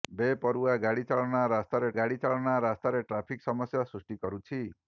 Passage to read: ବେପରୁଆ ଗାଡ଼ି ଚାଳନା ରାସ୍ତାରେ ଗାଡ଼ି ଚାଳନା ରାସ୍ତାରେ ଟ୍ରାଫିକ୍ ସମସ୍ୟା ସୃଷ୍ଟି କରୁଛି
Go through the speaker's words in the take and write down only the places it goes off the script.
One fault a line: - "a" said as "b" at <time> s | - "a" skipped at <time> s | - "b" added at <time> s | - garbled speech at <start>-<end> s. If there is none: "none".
none